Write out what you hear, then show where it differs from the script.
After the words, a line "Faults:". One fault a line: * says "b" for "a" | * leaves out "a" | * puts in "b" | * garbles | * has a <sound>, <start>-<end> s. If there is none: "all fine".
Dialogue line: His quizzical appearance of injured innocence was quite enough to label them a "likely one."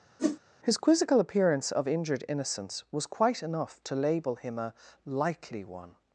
His quizzical appearance of injured innocence was quite enough to label him a "likely one."
Faults:
* has a whoosh, 0.2-0.4 s
* says "him" for "them"